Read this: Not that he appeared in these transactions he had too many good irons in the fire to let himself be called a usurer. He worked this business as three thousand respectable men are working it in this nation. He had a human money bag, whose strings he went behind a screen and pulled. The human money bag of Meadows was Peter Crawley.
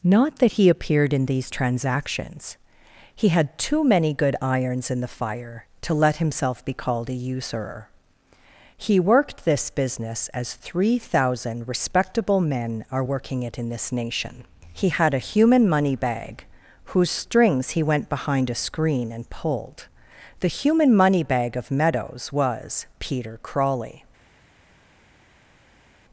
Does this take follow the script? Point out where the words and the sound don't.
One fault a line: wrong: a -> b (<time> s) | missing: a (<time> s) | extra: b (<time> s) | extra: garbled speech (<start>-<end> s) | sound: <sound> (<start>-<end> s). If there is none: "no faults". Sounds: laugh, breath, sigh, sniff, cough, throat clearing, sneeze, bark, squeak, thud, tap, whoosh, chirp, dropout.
no faults